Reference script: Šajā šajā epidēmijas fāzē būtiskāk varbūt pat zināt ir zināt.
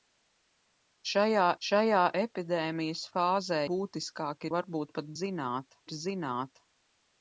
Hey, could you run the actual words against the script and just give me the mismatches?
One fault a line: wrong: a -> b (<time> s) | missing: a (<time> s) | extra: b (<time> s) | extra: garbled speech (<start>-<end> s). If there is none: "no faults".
no faults